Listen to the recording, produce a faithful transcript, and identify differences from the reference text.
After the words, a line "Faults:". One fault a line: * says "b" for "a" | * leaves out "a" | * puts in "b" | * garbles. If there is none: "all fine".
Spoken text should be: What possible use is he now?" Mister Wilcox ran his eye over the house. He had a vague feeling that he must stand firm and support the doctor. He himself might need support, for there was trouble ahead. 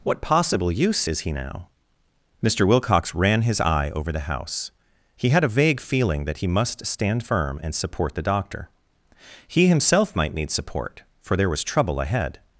What possible use is he now?" Mister Wilcox ran his eye over the house. He had a vague feeling that he must stand firm and support the doctor. He himself might need support, for there was trouble ahead.
Faults:
all fine